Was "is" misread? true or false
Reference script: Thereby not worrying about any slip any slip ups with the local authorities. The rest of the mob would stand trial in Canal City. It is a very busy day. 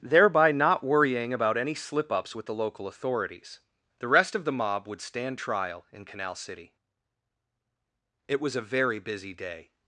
true